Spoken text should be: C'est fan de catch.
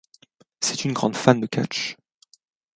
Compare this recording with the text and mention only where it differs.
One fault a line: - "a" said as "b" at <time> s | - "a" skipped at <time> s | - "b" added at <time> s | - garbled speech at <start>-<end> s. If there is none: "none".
- "une grande" added at 0.8 s